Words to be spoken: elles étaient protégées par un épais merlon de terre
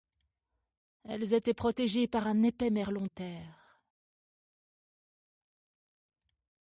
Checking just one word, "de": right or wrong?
wrong